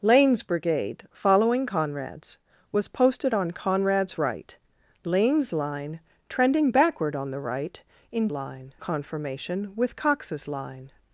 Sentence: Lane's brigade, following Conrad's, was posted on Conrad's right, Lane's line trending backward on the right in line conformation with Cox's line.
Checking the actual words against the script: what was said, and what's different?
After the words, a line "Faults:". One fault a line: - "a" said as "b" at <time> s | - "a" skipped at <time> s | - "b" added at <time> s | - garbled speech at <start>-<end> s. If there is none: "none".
Lane's brigade, following Conrad's, was posted on Conrad's right, Lane's line trending backward on the right in line conformation with Cox's line.
Faults:
none